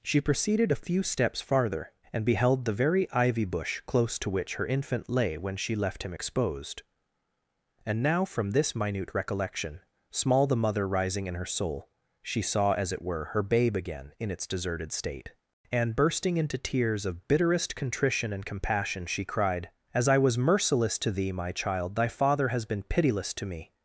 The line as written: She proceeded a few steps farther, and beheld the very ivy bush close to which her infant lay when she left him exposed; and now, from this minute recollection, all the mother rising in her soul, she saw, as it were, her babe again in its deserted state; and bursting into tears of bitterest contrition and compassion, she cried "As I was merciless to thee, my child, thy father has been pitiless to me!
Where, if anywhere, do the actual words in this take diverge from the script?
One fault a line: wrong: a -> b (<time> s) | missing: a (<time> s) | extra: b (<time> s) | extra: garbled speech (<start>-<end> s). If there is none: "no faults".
wrong: all -> small (10.1 s)